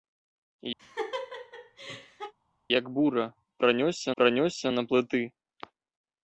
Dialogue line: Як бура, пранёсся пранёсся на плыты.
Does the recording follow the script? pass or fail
pass